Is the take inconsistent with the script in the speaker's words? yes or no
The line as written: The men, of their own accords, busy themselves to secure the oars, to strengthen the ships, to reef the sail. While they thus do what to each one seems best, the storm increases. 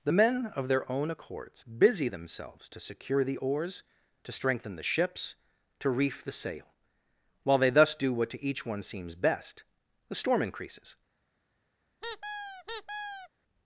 no